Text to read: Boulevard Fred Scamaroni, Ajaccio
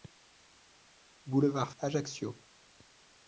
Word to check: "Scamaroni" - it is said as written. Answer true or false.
false